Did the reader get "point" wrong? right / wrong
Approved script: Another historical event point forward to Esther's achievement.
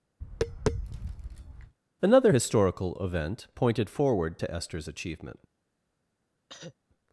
wrong